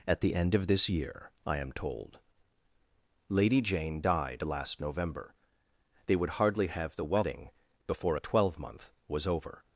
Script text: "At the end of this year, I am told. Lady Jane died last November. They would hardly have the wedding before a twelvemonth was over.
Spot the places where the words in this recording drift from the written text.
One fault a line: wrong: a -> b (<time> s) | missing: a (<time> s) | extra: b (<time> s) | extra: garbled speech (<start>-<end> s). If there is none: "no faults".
no faults